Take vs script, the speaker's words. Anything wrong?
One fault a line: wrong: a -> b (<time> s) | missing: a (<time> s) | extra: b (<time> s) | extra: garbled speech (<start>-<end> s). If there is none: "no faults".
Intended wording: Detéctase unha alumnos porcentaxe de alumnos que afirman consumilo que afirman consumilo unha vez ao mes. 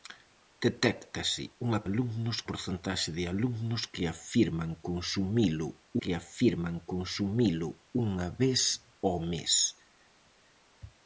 no faults